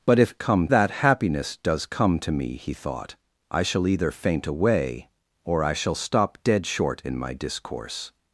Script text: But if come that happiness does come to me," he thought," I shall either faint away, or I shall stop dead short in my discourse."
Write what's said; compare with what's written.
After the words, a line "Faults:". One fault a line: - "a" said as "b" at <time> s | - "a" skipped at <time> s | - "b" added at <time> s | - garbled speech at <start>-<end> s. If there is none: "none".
But if come that happiness does come to me," he thought," I shall either faint away, or I shall stop dead short in my discourse."
Faults:
none